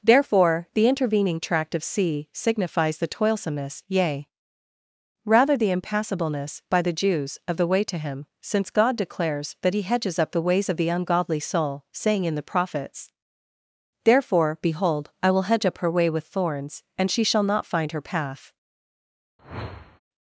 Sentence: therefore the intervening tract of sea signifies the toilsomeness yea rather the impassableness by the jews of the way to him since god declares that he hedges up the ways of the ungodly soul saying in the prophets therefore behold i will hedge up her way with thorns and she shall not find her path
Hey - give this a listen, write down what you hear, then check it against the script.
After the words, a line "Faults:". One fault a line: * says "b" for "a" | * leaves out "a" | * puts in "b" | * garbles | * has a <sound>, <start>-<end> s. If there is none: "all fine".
therefore the intervening tract of sea signifies the toilsomeness yea rather the impassableness by the jews of the way to him since god declares that he hedges up the ways of the ungodly soul saying in the prophets therefore behold i will hedge up her way with thorns and she shall not find her path
Faults:
* has a whoosh, 19.4-20.0 s